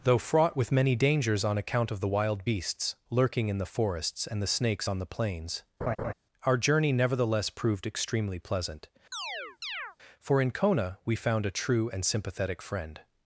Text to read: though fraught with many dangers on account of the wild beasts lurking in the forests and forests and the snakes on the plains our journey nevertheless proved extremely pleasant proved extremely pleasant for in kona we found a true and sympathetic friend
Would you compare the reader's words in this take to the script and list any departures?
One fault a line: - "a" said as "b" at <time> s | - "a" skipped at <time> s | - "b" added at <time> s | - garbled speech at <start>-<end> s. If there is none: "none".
- "forests and" skipped at 4.4 s
- "proved extremely pleasant" skipped at 8.9 s